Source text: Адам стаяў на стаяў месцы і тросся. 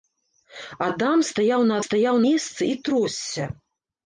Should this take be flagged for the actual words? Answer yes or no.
no